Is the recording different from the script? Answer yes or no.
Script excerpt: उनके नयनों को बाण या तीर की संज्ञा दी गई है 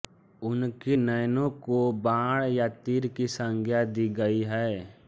no